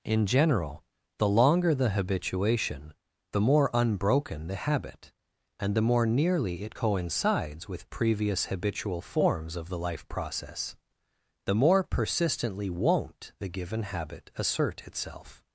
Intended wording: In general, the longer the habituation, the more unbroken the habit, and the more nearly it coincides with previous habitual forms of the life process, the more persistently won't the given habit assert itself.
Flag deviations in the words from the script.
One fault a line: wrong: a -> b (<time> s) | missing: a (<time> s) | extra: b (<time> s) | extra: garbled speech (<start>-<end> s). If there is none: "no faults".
no faults